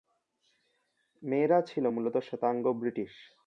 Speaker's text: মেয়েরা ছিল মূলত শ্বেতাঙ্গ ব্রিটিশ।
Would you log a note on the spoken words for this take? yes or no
no